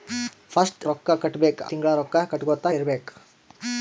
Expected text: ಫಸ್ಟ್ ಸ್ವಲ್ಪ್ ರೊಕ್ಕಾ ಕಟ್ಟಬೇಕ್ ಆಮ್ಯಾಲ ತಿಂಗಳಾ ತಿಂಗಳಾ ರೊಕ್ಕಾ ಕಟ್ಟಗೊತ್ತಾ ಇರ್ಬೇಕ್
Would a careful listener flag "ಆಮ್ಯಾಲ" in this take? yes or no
yes